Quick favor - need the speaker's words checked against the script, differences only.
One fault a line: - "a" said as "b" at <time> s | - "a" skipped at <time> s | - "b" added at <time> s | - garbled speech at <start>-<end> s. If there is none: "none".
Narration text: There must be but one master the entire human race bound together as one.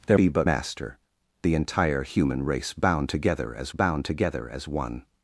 - "must" skipped at 0.2 s
- "one" skipped at 0.5 s
- "bound together as" added at 3.7 s